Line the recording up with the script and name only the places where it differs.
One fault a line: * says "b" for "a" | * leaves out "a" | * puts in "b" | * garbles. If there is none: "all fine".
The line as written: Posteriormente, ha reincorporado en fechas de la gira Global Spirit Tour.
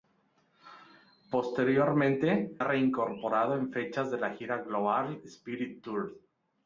all fine